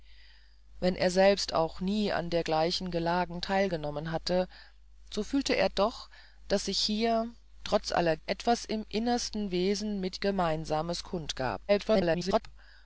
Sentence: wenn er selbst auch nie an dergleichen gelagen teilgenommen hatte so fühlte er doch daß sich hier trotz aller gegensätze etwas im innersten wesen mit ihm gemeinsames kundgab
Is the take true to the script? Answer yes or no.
no